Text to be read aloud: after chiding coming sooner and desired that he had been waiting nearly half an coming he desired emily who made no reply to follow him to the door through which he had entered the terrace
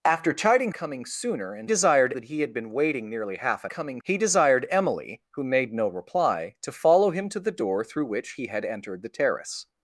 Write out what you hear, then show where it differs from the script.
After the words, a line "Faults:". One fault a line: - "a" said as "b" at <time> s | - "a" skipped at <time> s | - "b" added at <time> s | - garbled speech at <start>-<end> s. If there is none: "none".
after chiding coming sooner and desired that he had been waiting nearly half an coming he desired emily who made no reply to follow him to the door through which he had entered the terrace
Faults:
none